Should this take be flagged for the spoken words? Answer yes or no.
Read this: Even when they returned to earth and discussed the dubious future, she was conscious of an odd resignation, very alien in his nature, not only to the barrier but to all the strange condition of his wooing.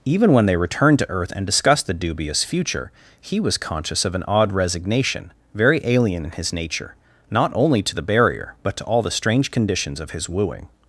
yes